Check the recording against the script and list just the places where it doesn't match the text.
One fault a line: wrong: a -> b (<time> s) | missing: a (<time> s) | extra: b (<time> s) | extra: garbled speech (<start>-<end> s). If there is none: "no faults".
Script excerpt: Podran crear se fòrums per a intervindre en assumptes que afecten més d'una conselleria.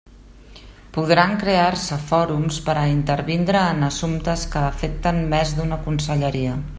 no faults